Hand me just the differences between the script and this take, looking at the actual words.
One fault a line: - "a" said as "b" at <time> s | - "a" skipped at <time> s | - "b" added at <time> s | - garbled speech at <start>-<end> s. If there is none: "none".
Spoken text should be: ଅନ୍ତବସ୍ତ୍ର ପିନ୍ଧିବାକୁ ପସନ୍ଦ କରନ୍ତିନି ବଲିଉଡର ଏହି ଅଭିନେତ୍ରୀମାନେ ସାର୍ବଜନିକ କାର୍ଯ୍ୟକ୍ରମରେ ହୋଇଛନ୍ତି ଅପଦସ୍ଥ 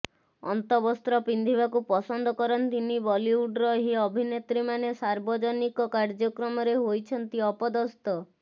none